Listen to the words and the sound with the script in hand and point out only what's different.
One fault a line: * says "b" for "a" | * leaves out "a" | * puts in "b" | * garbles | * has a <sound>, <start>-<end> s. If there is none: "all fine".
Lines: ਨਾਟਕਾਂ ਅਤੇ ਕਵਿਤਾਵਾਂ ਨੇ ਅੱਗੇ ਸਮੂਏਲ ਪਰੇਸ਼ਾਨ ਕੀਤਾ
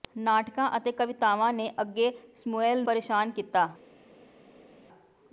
all fine